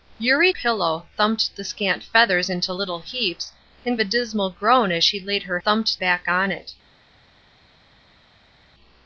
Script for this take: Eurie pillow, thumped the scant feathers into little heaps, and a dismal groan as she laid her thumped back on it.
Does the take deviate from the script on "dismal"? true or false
false